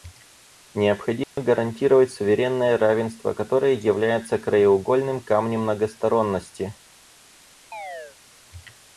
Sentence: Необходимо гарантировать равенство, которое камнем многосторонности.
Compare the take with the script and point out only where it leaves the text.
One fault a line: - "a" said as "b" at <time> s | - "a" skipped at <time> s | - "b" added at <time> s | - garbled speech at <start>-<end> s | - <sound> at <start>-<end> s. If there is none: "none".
- dropout at 1.2-1.4 s
- "суверенное" added at 2.1 s
- "является краеугольным" added at 3.8 s
- chirp at 7.7-8.2 s